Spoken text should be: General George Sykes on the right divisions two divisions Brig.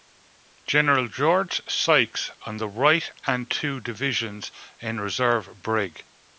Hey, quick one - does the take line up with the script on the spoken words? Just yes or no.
no